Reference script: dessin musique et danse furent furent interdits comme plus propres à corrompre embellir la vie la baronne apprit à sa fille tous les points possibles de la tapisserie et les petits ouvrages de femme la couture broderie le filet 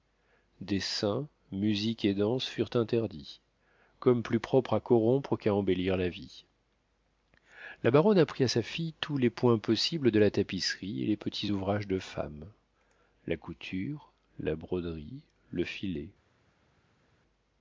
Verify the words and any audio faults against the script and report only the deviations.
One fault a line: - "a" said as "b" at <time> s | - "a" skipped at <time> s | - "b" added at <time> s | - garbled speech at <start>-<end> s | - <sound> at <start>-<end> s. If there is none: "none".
- "furent" skipped at 2.7 s
- "qu'à" added at 5.4 s
- "la" added at 14.4 s